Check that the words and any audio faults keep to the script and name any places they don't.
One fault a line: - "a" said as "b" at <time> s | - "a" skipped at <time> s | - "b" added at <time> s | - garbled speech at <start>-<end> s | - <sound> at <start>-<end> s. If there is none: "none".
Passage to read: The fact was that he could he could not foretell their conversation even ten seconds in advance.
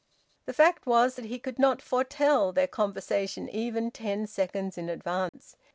- "he could" skipped at 1.6 s
- dropout at 5.3-5.3 s